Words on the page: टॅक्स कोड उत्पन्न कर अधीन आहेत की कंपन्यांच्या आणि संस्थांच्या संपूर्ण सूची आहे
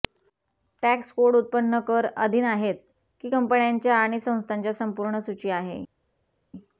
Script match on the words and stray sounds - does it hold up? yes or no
yes